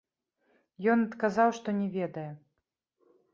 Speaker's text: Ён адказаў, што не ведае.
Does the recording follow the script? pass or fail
pass